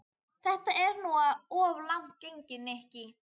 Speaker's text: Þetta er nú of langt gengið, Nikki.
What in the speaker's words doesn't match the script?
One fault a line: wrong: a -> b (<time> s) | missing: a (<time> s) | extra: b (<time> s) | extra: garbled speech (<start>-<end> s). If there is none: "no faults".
no faults